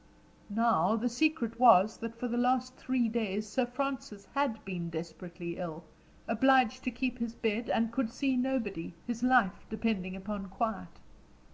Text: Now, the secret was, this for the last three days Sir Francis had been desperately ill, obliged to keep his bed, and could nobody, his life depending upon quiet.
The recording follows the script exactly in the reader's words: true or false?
false